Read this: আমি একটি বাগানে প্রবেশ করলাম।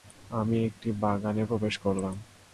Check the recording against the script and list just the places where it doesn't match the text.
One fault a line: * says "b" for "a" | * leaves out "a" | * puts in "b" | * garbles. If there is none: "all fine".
all fine